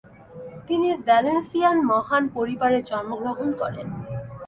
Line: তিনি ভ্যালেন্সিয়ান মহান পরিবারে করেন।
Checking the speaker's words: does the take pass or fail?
fail